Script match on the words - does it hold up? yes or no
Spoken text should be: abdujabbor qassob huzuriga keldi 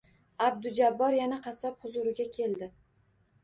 no